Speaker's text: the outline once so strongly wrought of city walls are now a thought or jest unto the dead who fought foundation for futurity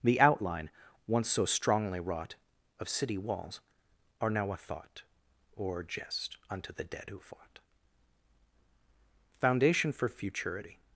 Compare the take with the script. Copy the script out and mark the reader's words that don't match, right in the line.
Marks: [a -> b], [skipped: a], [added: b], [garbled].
the outline once so strongly wrought of city walls are now a thought or jest unto the dead who fought foundation for futurity